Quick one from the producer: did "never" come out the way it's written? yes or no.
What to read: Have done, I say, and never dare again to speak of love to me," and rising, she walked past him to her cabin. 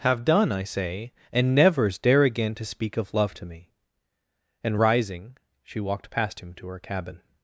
no